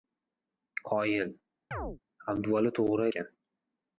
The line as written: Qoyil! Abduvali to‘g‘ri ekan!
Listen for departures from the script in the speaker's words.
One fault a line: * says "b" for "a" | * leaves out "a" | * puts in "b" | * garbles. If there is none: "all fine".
all fine